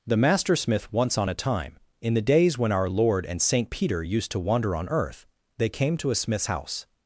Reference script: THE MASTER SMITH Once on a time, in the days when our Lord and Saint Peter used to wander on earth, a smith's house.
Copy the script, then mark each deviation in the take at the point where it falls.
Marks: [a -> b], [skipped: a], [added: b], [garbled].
THE MASTER SMITH Once on a time, in the days when our Lord and Saint Peter used to wander on earth, [added: they came to] a smith's house.